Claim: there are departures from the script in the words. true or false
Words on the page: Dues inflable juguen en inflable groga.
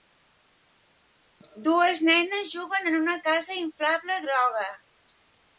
true